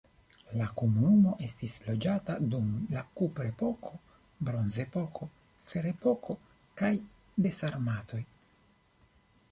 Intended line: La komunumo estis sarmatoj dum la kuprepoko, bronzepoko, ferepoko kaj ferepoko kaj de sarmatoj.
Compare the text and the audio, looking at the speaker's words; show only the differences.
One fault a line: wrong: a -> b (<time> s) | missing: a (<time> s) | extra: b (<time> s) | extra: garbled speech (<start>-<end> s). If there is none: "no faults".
wrong: sarmatoj -> loĝata (1.9 s)
missing: ferepoko kaj (7.0 s)